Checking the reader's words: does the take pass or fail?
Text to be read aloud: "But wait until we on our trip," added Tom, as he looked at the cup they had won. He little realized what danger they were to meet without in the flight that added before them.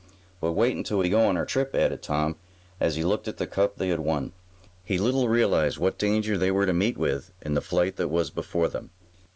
fail